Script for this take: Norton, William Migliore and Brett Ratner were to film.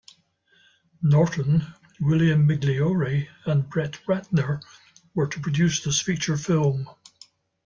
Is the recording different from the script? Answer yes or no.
yes